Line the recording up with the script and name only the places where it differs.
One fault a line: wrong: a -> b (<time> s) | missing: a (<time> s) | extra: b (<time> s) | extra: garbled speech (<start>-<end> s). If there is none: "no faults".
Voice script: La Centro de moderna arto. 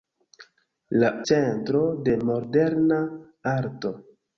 no faults